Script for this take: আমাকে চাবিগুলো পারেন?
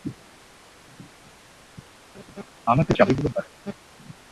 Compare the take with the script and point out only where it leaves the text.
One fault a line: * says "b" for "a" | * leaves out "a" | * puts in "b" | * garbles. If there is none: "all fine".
all fine